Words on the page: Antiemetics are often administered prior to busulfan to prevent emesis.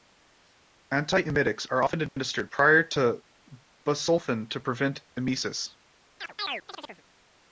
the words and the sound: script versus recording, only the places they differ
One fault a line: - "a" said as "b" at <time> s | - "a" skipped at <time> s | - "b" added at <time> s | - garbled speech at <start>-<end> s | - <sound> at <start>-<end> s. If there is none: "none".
- dropout at 2.1-2.2 s
- chirp at 6.2-7.0 s